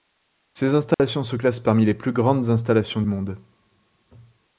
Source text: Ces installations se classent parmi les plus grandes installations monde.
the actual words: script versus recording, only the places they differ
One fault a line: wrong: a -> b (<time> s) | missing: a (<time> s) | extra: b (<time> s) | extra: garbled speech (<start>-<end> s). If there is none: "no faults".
no faults